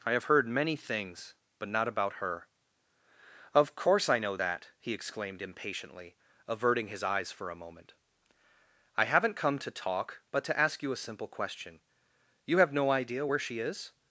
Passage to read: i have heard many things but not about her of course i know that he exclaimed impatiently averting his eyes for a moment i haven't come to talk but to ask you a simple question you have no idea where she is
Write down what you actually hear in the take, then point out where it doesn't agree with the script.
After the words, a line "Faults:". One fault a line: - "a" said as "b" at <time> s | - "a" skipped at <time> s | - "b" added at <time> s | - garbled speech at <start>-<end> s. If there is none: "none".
i have heard many things but not about her of course i know that he exclaimed impatiently averting his eyes for a moment i haven't come to talk but to ask you a simple question you have no idea where she is
Faults:
none